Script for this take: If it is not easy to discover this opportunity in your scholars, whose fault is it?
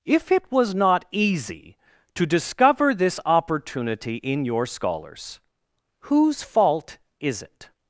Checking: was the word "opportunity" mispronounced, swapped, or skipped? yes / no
no